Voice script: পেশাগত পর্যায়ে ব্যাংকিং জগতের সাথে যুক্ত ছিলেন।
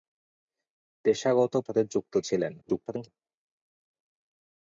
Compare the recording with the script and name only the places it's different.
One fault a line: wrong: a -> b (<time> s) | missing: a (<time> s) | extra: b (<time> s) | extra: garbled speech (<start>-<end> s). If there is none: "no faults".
missing: পর্যায়ে ব্যাংকিং জগতের (1.5 s)
extra: garbled speech (2.6-3.1 s)